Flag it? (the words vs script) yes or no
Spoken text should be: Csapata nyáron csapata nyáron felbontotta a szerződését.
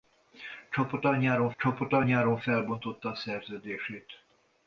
no